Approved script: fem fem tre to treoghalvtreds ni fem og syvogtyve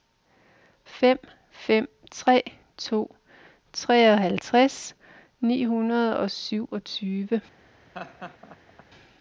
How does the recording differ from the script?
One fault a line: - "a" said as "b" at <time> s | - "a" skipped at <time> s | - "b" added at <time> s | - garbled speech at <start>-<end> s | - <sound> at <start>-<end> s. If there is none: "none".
- "fem" said as "hundrede" at 5.7 s
- laugh at 7.9-8.8 s